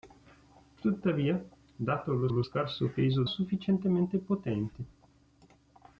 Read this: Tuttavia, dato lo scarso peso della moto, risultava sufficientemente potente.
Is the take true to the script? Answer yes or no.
no